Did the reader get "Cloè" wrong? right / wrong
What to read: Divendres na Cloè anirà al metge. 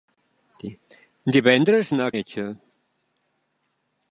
wrong